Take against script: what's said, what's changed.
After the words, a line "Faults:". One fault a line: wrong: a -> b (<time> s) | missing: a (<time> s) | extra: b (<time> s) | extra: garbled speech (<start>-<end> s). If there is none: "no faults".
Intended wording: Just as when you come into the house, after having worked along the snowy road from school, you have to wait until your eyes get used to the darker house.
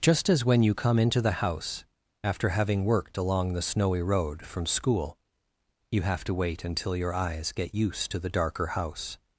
Just as when you come into the house, after having worked along the snowy road from school, you have to wait until your eyes get used to the darker house.
Faults:
no faults